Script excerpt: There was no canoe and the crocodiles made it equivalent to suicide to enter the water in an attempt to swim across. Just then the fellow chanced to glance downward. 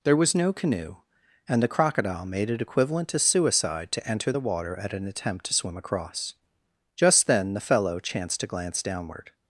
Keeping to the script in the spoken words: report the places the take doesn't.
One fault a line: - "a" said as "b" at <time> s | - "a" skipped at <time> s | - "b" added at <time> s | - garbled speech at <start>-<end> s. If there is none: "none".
- "crocodiles" said as "crocodile" at 1.7 s
- "in" said as "at" at 4.8 s